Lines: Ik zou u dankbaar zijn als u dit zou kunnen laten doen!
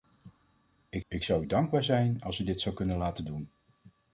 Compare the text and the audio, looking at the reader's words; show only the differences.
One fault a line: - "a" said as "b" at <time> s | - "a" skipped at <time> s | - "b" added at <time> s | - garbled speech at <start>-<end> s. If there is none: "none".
- "ik" added at 1.1 s